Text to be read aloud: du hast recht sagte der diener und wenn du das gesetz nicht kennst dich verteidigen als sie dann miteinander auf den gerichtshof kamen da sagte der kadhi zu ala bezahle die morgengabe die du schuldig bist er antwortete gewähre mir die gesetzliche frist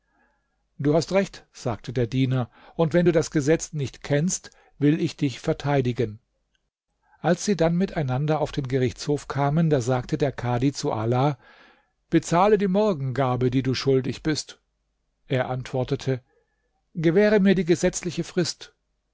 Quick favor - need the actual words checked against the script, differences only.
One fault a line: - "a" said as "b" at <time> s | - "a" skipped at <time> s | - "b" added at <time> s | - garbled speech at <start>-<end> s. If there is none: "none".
- "will ich" added at 4.8 s